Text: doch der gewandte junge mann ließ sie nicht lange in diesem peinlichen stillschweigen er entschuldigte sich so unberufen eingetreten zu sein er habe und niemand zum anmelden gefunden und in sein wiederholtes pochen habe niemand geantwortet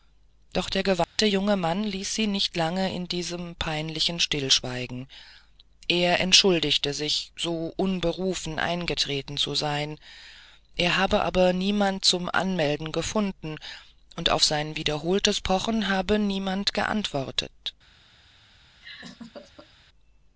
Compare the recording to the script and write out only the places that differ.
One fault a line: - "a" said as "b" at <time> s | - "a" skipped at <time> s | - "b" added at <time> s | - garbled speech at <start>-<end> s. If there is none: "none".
- "und" said as "aber" at 11.2 s
- "in" said as "auf" at 14.3 s